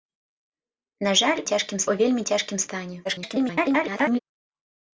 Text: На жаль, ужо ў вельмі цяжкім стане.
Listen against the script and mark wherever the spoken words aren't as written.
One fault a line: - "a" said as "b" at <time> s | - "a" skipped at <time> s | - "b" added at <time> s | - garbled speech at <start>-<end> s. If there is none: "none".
- "ужо" said as "цяжкім" at 1.5 s
- garbled speech at 3.0-4.2 s